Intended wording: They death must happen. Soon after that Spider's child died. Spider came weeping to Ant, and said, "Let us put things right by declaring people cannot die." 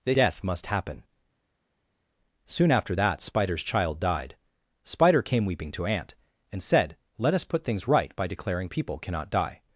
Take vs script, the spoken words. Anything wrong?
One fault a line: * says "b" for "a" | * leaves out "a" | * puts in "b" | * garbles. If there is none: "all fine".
all fine